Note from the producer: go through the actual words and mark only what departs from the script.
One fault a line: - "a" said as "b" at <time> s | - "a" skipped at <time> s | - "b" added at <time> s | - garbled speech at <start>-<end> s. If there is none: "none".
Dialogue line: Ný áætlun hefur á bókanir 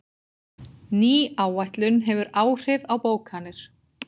- "áhrif" added at 2.5 s